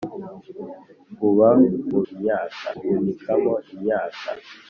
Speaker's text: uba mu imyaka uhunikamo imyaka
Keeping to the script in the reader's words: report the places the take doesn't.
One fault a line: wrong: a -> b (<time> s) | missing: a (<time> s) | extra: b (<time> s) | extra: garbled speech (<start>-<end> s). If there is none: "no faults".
no faults